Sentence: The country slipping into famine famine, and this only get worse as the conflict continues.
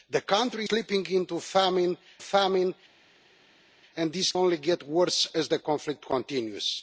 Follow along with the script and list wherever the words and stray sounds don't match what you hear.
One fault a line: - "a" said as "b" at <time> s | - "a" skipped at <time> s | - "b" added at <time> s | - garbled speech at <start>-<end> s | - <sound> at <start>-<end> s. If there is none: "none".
none